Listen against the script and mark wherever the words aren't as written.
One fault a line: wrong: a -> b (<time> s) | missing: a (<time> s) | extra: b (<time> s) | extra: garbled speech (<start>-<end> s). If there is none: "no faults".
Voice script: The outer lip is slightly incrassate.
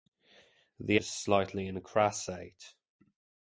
missing: outer lip (1.0 s)